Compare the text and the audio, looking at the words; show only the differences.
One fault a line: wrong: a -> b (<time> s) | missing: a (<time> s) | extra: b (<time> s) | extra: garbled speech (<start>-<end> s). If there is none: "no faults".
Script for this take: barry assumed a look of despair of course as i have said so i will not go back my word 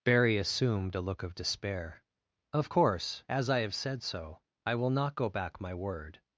no faults